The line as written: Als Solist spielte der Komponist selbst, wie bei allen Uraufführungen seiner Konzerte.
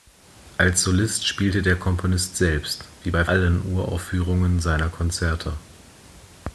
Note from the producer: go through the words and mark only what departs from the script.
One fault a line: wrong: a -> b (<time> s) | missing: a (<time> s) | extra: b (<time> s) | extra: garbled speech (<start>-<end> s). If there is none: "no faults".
no faults